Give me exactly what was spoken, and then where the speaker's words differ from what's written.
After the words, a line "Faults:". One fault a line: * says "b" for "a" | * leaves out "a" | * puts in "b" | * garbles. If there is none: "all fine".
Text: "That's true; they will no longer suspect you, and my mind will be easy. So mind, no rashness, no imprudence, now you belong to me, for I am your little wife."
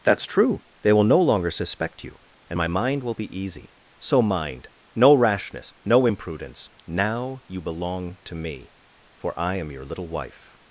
"That's true; they will no longer suspect you, and my mind will be easy. So mind, no rashness, no imprudence, now you belong to me, for I am your little wife."
Faults:
all fine